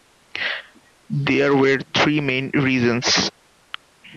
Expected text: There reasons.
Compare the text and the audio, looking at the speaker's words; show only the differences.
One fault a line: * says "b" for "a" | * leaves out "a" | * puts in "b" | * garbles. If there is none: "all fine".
* puts in "were three main"